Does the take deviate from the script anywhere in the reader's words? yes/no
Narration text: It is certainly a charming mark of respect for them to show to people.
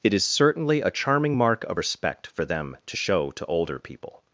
yes